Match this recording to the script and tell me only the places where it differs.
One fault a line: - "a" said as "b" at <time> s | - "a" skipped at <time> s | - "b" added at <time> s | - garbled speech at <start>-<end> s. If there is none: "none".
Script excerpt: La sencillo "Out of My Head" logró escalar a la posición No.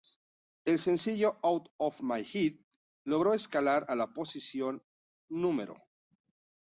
- "La" said as "El" at 0.7 s